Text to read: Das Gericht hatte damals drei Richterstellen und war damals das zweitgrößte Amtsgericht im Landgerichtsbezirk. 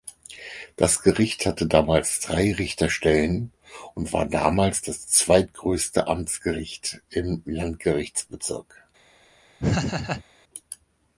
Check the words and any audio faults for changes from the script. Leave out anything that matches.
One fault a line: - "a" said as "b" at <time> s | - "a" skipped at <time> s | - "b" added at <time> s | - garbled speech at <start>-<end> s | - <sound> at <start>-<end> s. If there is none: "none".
- laugh at 9.6-10.2 s